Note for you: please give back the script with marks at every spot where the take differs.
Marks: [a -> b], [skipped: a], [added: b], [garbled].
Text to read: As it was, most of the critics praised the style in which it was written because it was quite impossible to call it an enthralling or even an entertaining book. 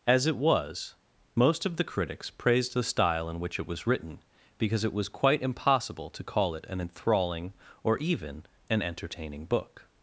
As it was, most of the critics praised the style in which it was written because it was quite impossible to call it an enthralling or even an entertaining book.